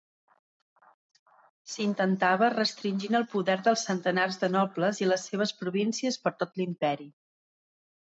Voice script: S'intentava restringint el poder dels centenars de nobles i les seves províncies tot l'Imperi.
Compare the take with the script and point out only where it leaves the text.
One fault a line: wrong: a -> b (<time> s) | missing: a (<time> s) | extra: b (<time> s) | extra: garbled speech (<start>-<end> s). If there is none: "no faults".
extra: per (6.3 s)